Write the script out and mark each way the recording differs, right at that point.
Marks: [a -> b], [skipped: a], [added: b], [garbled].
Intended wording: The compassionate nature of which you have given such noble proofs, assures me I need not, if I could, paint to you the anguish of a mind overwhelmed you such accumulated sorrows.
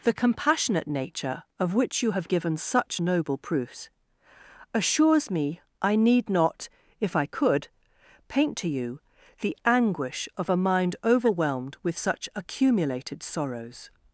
The compassionate nature of which you have given such noble proofs, assures me I need not, if I could, paint to you the anguish of a mind overwhelmed [you -> with] such accumulated sorrows.